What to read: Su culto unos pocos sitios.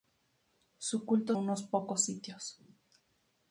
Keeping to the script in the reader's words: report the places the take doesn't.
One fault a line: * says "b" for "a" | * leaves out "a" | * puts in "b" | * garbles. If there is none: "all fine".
all fine